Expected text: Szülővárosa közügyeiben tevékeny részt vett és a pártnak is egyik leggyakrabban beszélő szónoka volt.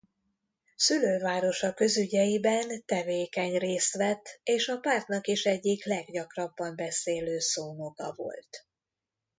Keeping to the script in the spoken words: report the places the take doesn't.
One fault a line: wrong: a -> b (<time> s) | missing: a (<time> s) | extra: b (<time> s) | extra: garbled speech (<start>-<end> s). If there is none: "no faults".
no faults